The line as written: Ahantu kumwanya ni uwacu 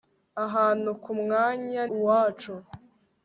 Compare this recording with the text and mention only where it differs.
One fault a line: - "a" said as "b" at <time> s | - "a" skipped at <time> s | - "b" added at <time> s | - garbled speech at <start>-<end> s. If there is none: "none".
- "ni" skipped at 1.8 s